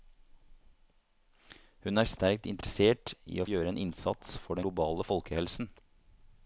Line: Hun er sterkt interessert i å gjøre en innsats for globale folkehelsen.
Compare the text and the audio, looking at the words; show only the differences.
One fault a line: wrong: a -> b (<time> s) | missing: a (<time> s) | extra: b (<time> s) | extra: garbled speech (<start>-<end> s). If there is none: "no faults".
no faults